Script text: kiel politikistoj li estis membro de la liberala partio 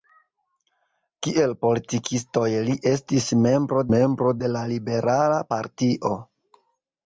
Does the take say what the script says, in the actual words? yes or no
no